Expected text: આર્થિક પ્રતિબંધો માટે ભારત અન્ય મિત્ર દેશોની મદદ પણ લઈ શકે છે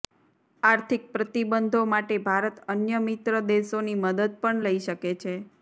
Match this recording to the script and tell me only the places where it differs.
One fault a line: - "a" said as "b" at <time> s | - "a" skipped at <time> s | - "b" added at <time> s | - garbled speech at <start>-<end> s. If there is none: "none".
none